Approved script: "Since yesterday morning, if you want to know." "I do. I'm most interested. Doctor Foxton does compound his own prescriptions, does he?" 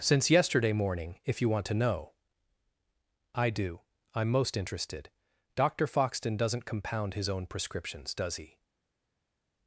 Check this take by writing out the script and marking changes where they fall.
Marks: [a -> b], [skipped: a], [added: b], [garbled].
"Since yesterday morning, if you want to know." "I do. I'm most interested. Doctor Foxton [does -> doesn't] compound his own prescriptions, does he?"